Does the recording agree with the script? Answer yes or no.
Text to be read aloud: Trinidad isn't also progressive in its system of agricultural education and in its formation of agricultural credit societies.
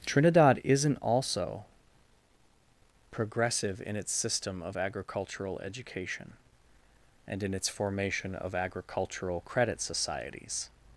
yes